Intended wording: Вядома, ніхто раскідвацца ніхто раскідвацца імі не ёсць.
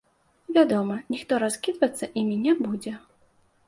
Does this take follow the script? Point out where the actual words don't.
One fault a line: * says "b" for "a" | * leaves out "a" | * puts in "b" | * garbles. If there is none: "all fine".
* leaves out "ніхто раскідвацца"
* says "будзе" for "ёсць"